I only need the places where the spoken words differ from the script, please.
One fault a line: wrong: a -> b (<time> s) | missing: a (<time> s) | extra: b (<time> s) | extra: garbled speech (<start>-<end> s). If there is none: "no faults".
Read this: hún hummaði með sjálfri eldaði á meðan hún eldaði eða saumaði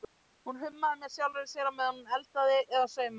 wrong: eldaði -> sér (1.5 s)